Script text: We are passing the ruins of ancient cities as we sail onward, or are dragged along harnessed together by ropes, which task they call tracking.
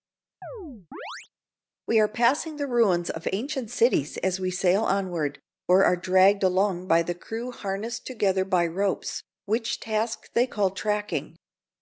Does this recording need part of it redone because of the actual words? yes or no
yes